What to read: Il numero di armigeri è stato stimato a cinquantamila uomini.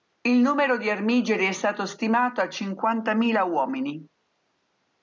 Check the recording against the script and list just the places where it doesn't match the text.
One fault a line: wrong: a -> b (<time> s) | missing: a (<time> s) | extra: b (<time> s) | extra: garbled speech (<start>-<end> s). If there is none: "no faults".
no faults